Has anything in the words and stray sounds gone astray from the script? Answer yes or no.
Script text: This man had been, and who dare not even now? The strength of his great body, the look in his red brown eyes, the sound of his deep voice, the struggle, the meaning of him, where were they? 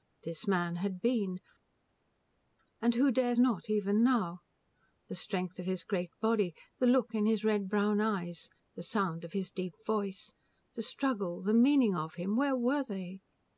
no